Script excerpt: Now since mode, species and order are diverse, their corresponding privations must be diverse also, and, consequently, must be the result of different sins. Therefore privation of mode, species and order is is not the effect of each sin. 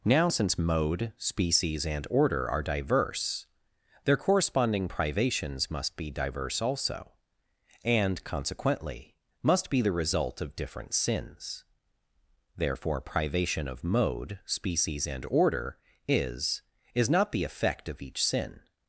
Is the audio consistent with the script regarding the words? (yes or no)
yes